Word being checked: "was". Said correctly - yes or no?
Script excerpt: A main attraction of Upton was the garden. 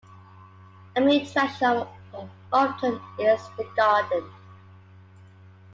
no